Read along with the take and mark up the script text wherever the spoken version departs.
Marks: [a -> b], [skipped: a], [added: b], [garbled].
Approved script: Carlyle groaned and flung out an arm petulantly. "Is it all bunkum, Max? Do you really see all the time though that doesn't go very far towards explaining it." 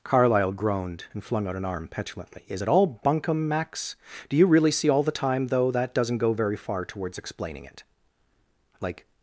Carlyle groaned and flung out an arm petulantly. "Is it all bunkum, Max? Do you really see all the time though that doesn't go very far towards explaining it." [added: Like]